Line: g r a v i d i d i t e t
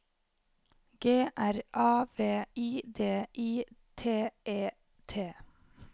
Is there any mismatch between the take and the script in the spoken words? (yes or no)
yes